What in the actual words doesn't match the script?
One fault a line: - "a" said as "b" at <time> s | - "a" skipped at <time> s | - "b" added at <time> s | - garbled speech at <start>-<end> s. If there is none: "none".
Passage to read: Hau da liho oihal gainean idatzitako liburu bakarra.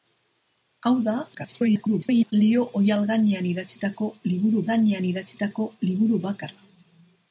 - garbled speech at 1.3-2.3 s
- "gainean idatzitako liburu" added at 4.7 s